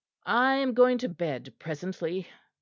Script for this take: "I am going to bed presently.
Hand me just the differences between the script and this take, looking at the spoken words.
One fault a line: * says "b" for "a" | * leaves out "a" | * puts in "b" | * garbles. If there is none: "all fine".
all fine